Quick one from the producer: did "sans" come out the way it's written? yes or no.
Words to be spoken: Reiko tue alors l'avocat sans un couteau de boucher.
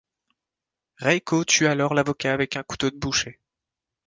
no